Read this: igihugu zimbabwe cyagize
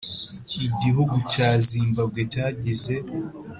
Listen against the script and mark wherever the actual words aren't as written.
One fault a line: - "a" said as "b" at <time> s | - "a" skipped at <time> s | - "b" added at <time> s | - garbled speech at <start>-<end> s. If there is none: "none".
- "cya" added at 1.3 s